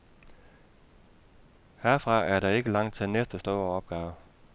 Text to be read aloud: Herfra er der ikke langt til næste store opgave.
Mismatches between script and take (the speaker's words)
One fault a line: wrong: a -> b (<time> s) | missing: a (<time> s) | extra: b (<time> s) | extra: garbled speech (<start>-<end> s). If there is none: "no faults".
no faults